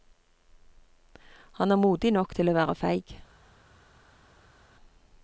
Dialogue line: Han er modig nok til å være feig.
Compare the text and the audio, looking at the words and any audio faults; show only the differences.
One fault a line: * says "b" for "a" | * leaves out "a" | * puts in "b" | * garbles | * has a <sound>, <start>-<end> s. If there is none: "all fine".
all fine